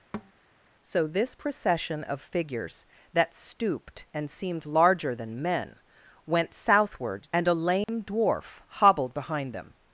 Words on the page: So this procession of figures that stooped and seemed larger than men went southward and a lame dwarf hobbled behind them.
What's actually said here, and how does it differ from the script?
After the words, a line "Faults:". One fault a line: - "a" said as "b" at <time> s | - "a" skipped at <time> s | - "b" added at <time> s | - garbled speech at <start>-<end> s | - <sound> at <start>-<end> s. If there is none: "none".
So this procession of figures that stooped and seemed larger than men went southward and a lame dwarf hobbled behind them.
Faults:
- thud at 0.1-0.3 s
- dropout at 7.8-7.9 s